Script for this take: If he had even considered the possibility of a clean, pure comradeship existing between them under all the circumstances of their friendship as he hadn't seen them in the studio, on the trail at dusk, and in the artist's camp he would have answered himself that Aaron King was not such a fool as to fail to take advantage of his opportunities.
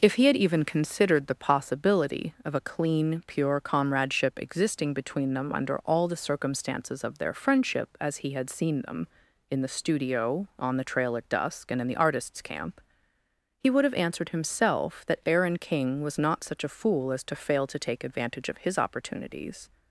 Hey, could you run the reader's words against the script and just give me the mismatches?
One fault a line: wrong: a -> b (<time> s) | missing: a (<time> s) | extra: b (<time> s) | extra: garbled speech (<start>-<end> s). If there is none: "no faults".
wrong: hadn't -> had (8.3 s)